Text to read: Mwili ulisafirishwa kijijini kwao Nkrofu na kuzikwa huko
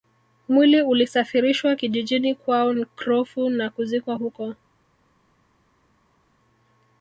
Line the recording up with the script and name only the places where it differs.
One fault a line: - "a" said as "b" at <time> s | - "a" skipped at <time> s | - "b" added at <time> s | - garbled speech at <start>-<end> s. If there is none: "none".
none